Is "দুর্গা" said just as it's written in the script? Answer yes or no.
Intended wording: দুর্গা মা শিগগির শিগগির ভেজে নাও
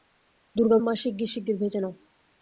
yes